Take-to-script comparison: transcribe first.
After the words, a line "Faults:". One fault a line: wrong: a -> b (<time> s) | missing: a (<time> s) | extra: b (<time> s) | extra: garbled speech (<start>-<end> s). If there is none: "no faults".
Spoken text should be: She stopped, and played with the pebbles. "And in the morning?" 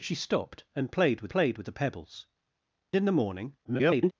She stopped, and played with played with the pebbles. "In the morning?" [garbled]
Faults:
extra: played with (1.3 s)
missing: And (2.3 s)
extra: garbled speech (3.6-4.1 s)